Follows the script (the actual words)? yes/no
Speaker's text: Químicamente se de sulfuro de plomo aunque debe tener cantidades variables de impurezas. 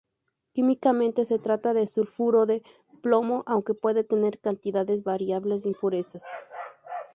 no